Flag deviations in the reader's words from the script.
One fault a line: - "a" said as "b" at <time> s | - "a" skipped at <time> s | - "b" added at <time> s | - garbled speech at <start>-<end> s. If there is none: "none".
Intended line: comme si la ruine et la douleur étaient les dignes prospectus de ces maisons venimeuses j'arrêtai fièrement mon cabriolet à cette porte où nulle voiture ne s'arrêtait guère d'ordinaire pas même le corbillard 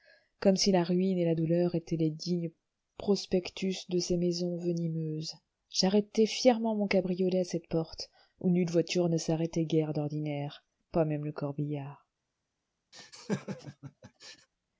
none